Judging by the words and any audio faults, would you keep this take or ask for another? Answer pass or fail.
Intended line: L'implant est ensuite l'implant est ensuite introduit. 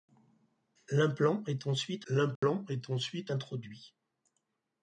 fail